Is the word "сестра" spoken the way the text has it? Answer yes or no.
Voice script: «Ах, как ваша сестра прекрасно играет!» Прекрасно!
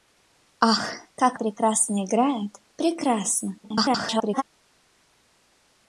no